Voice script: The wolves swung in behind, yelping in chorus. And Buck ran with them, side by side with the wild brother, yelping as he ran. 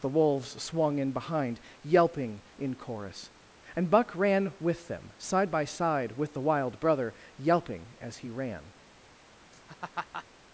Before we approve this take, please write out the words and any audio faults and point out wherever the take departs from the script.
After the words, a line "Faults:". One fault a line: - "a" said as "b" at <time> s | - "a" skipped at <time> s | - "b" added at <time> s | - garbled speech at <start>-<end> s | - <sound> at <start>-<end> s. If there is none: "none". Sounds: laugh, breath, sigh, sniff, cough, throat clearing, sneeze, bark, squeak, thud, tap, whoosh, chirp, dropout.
The wolves swung in behind, yelping in chorus. And Buck ran with them, side by side with the wild brother, yelping as he ran.
Faults:
- laugh at 9.5-10.3 s